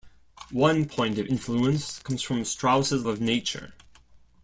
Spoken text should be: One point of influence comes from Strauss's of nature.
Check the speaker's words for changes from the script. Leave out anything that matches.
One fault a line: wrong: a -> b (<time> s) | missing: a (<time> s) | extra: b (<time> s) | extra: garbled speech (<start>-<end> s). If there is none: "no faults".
no faults